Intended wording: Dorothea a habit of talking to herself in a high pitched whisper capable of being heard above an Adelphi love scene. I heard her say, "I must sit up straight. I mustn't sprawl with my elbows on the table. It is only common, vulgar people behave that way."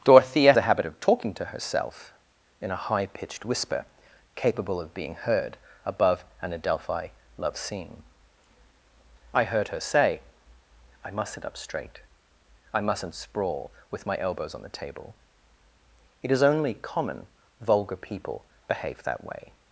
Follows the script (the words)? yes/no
yes